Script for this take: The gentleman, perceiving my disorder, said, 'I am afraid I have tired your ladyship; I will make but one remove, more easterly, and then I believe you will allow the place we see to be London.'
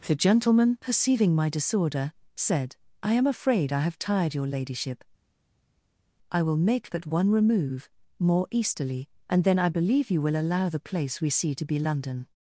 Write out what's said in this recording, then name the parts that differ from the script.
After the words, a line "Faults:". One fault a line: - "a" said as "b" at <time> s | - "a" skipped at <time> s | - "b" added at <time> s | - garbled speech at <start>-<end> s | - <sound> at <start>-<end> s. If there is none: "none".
The gentleman, perceiving my disorder, said, 'I am afraid I have tired your ladyship; I will make but one remove, more easterly, and then I believe you will allow the place we see to be London.'
Faults:
none